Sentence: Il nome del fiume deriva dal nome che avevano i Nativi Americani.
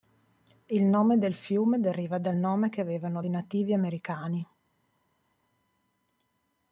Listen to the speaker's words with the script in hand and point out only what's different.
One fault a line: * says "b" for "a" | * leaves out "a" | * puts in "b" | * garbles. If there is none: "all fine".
all fine